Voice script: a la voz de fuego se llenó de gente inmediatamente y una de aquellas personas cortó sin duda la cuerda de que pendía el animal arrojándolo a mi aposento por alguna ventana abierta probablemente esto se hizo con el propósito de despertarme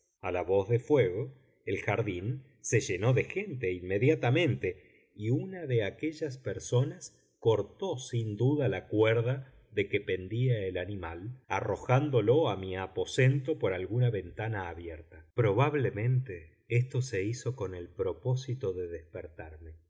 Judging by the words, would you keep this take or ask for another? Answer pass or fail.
fail